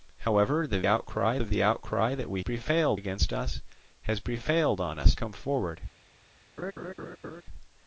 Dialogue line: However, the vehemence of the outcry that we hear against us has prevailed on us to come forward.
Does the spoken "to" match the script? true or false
false